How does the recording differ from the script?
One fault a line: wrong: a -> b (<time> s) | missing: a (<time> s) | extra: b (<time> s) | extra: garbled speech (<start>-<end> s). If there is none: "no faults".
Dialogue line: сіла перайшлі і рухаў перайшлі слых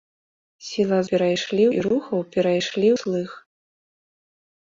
no faults